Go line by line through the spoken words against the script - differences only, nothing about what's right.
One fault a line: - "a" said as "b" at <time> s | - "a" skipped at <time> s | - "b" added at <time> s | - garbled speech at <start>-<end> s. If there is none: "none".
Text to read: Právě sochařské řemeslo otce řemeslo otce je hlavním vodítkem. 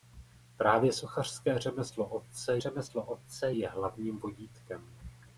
none